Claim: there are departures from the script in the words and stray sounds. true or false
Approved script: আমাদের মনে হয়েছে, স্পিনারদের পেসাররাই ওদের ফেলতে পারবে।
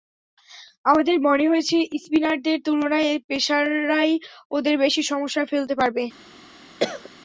true